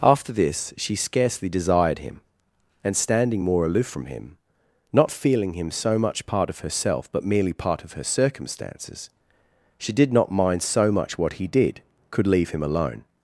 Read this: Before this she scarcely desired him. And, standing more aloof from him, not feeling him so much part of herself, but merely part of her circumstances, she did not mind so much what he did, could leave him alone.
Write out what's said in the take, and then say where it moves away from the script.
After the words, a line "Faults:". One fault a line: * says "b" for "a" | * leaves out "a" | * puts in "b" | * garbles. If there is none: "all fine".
After this she scarcely desired him. And, standing more aloof from him, not feeling him so much part of herself, but merely part of her circumstances, she did not mind so much what he did, could leave him alone.
Faults:
* says "After" for "Before"